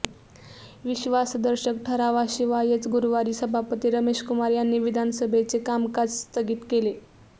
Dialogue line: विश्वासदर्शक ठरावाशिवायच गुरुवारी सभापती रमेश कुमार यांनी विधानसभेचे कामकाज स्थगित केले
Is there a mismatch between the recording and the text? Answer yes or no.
no